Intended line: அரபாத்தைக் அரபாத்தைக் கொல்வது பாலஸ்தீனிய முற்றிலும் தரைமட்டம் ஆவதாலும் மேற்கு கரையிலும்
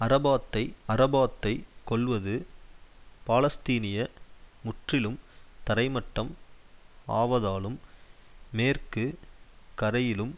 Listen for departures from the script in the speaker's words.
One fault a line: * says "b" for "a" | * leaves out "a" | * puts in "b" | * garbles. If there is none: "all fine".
all fine